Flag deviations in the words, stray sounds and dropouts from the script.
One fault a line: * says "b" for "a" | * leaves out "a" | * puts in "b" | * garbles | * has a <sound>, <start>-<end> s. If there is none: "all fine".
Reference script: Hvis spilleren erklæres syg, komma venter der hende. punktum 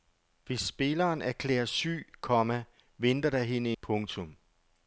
all fine